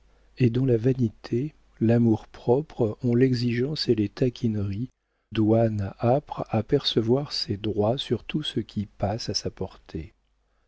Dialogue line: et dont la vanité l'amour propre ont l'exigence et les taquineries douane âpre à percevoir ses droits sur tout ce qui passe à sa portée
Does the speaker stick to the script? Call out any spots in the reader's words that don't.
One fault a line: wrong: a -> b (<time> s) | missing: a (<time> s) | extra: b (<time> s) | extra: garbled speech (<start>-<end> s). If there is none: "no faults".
no faults